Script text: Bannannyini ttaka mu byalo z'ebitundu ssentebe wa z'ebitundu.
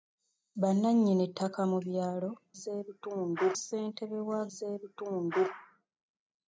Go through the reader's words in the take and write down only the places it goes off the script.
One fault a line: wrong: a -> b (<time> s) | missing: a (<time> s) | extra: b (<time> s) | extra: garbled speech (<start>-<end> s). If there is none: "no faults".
no faults